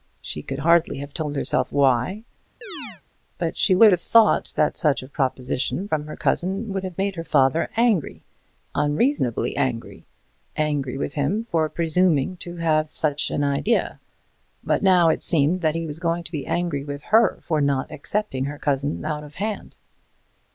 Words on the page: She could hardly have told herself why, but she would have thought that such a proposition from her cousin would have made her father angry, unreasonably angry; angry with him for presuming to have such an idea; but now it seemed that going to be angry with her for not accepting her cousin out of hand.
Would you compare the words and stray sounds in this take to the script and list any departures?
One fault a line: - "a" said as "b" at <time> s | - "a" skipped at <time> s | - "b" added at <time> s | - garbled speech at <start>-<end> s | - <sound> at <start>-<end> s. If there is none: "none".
- chirp at 2.6-3.0 s
- "he was" added at 15.8 s